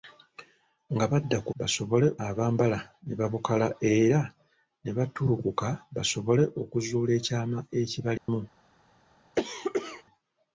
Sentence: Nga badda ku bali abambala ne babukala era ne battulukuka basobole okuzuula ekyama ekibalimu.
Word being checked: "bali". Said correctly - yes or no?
no